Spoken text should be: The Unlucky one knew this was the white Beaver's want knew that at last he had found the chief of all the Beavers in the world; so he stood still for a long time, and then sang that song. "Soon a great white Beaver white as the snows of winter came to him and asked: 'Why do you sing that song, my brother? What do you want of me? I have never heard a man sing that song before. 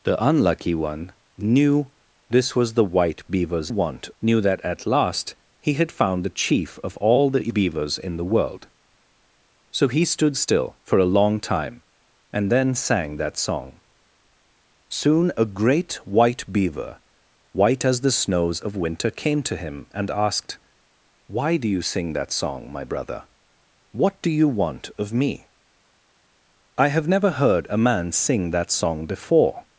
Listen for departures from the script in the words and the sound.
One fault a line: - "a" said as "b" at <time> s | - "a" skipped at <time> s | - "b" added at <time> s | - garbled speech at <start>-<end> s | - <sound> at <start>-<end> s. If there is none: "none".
none